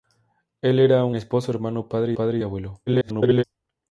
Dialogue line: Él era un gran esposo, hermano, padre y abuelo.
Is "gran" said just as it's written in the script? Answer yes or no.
no